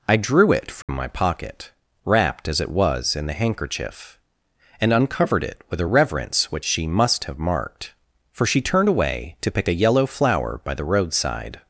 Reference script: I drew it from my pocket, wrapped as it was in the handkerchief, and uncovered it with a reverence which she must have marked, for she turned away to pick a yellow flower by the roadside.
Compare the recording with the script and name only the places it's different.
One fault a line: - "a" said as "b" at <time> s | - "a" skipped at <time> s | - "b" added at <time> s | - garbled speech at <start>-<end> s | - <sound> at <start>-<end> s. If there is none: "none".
- dropout at 0.8-0.9 s